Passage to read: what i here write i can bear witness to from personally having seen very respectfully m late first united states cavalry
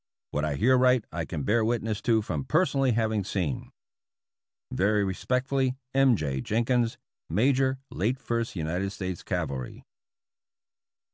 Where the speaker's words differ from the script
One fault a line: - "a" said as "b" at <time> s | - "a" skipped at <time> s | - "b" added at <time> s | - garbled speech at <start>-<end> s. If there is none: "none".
- "j jenkins major" added at 6.2 s